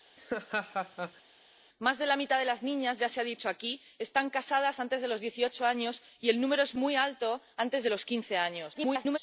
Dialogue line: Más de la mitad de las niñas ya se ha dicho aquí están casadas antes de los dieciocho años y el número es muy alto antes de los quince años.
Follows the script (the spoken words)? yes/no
no